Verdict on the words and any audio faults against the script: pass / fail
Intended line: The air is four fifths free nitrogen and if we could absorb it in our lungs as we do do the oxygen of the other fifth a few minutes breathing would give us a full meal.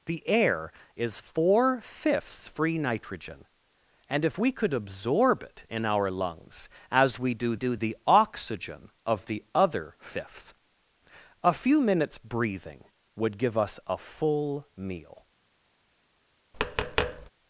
fail